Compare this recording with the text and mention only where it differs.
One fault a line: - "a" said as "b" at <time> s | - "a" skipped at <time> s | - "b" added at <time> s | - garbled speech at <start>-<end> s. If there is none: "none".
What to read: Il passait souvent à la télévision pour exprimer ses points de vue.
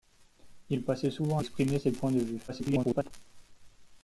- "la télévision pour" skipped at 1.4 s
- garbled speech at 2.5-3.1 s